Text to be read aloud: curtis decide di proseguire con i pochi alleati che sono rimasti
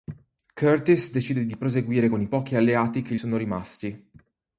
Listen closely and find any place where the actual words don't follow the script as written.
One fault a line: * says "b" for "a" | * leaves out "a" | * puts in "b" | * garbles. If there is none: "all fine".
all fine